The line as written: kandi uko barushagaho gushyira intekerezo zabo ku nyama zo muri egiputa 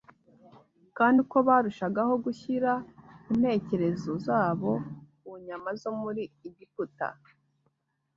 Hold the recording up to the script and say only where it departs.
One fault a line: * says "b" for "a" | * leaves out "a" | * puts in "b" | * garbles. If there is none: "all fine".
all fine